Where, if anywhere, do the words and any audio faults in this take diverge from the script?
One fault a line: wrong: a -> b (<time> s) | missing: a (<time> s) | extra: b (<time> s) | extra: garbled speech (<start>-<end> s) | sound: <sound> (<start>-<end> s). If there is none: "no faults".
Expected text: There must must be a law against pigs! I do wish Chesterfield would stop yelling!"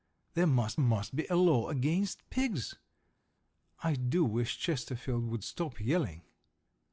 no faults